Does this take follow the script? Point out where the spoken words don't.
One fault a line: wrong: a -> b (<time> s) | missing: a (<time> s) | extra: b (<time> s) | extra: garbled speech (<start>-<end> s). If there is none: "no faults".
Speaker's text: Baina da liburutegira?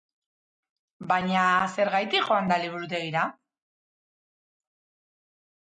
extra: zergatik joan (1.7 s)